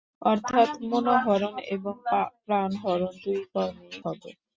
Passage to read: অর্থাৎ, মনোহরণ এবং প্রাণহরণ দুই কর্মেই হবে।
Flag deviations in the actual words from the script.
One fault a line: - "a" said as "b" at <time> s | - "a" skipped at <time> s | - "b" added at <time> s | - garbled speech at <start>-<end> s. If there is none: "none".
none